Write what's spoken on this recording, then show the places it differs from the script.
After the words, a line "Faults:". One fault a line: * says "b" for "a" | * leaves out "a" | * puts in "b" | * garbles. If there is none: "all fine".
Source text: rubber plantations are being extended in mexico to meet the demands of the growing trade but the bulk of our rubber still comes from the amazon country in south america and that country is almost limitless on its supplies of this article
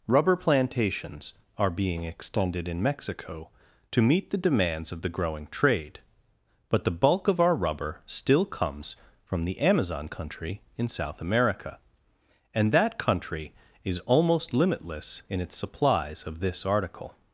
rubber plantations are being extended in mexico to meet the demands of the growing trade but the bulk of our rubber still comes from the amazon country in south america and that country is almost limitless in its supplies of this article
Faults:
* says "in" for "on"